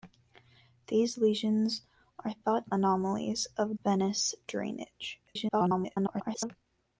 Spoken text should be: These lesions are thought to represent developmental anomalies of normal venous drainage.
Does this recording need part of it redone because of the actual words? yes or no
yes